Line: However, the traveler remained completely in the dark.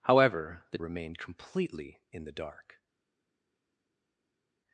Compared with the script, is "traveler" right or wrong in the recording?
wrong